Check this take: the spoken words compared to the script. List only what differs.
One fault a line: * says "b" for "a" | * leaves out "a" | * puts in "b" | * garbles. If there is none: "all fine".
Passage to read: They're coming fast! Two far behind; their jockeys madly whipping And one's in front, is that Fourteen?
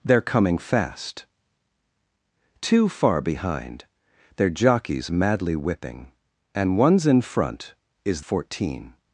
* leaves out "that"